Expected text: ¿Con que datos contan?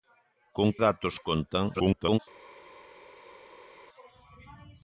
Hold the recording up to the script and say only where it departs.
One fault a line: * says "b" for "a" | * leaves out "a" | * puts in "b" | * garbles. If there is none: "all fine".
* leaves out "que"
* garbles